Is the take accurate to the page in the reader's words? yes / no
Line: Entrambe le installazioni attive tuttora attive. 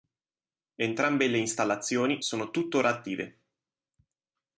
no